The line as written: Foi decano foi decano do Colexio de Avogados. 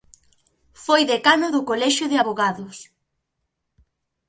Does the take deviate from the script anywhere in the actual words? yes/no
yes